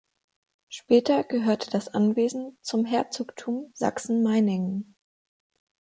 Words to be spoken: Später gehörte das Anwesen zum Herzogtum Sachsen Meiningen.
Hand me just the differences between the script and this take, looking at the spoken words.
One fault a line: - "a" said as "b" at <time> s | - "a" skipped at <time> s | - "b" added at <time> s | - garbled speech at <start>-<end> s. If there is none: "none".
none